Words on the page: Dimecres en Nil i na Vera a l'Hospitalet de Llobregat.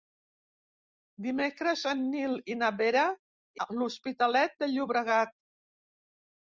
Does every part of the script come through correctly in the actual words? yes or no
yes